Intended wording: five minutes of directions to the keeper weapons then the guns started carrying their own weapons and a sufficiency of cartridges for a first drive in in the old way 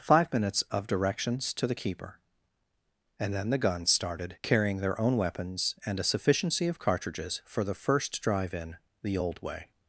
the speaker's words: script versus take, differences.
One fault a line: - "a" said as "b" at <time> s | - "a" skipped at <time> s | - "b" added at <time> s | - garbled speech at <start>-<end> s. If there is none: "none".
- "weapons" said as "and" at 3.2 s
- "a" said as "the" at 7.6 s
- "in" skipped at 8.8 s